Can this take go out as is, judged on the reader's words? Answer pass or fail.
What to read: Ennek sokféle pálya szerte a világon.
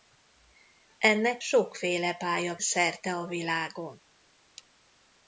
pass